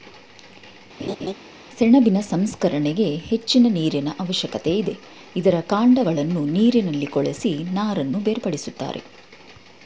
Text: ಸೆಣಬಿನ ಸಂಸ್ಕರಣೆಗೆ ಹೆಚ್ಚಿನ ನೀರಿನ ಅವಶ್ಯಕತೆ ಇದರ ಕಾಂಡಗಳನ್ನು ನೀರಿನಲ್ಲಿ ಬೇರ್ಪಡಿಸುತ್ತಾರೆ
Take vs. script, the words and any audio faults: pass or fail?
fail